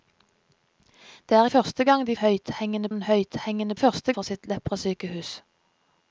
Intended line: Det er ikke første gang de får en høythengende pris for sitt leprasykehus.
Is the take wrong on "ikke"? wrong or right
wrong